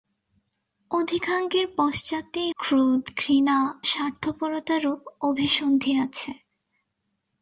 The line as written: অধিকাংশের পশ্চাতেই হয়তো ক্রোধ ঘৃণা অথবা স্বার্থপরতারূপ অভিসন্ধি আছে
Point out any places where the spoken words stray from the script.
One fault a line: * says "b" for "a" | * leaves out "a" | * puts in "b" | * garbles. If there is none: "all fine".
* leaves out "হয়তো"
* leaves out "অথবা"